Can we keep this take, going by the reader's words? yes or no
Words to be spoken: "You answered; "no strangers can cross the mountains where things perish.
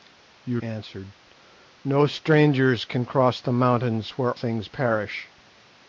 yes